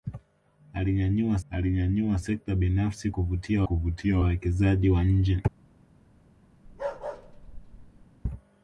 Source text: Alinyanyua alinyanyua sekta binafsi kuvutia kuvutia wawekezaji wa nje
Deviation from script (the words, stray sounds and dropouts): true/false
true